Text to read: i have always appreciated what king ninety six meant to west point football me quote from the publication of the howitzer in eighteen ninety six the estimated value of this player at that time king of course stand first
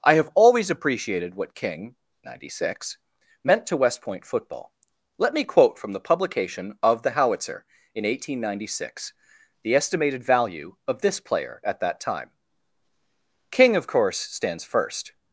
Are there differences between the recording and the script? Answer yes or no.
yes